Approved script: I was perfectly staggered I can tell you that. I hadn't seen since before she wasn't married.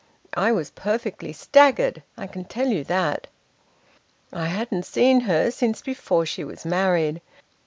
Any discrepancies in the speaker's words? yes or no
yes